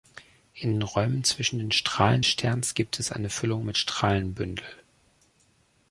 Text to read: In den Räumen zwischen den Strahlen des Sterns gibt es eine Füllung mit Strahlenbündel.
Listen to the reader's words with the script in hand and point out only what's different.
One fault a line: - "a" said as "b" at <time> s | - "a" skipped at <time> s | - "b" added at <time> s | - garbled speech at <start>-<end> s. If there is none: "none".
- "des" skipped at 2.2 s